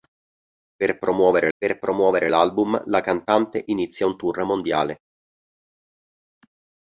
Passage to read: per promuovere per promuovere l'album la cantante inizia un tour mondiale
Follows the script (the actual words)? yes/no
yes